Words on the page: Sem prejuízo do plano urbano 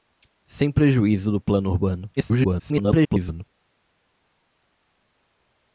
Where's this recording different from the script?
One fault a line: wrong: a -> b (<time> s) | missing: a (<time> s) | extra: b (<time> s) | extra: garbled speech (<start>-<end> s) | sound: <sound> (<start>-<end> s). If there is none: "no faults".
extra: garbled speech (2.2-3.4 s)